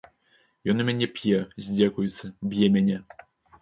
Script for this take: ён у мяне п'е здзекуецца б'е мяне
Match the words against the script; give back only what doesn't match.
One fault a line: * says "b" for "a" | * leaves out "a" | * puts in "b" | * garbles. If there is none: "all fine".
all fine